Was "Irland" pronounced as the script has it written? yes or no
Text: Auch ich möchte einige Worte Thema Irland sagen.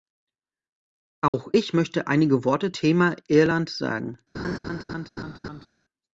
yes